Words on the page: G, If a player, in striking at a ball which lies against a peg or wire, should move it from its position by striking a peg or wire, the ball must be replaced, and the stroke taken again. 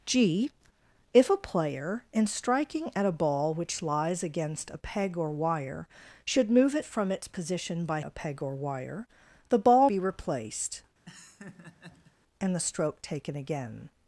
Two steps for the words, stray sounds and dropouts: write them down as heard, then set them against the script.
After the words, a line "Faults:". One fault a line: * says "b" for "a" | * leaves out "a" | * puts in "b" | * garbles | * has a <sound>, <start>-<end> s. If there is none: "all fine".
G, If a player, in striking at a ball which lies against a peg or wire, should move it from its position by a peg or wire, the ball be replaced, and the stroke taken again.
Faults:
* leaves out "striking"
* leaves out "must"
* has a laugh, 11.1-12.1 s